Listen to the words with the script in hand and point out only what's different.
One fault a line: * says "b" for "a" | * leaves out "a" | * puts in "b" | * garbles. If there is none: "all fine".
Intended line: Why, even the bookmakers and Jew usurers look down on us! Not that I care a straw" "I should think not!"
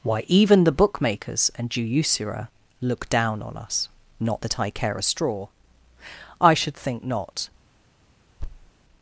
* says "usurer" for "usurers"